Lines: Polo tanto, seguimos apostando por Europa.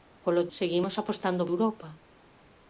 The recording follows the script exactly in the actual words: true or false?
false